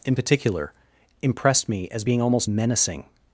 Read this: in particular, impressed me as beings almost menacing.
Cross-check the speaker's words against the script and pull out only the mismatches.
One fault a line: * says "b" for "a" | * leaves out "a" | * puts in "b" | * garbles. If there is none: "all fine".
* says "being" for "beings"